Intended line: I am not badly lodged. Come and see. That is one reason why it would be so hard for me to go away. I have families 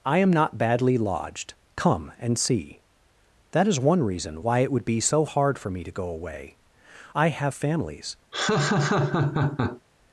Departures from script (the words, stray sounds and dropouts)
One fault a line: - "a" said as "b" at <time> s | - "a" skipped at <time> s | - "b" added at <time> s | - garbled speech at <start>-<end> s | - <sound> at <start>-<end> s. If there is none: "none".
- laugh at 8.3-9.8 s